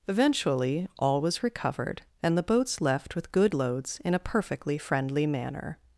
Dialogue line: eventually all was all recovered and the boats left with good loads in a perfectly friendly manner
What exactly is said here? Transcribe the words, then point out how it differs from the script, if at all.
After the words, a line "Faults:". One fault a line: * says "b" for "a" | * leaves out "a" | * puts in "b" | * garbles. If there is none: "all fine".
eventually all was recovered and the boats left with good loads in a perfectly friendly manner
Faults:
* leaves out "all"